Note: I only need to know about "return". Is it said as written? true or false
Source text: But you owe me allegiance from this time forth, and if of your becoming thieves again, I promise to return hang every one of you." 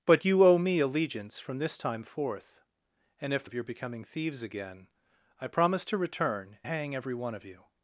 true